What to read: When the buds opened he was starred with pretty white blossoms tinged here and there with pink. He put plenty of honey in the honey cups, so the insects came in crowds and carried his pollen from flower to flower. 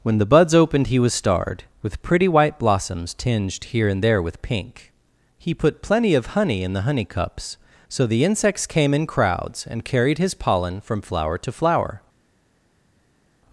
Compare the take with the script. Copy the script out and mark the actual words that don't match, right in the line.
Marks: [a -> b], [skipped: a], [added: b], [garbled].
When the buds opened he was starred with pretty white blossoms tinged here and there with pink. He put plenty of honey in the honey cups, so the insects came in crowds and carried his pollen from flower to flower.